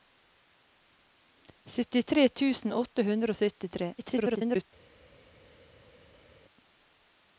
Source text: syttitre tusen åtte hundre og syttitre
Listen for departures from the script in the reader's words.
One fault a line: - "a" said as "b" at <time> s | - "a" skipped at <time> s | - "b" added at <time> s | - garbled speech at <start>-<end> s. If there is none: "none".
- garbled speech at 4.0-4.7 s